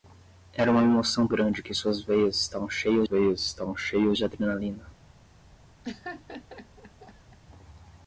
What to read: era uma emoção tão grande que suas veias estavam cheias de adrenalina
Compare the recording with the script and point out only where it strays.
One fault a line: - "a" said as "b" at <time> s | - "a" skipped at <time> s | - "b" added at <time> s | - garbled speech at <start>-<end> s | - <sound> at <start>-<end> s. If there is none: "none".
- "tão" skipped at 1.3 s
- "veias estavam cheias" added at 3.0 s
- laugh at 5.8-7.4 s